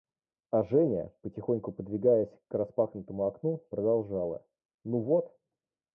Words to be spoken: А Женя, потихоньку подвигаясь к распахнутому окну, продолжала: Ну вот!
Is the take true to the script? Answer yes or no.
yes